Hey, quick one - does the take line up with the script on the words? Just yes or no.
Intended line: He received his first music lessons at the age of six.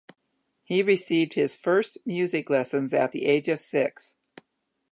yes